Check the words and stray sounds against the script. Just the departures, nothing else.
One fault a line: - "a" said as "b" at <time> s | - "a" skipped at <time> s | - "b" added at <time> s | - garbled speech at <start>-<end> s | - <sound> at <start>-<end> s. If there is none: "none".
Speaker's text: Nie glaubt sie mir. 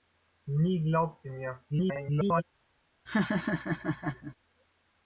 - garbled speech at 1.7-2.4 s
- laugh at 3.1-4.4 s